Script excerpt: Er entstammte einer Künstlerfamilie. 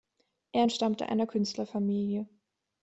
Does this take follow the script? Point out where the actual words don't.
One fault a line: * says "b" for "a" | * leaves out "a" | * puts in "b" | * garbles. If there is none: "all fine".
all fine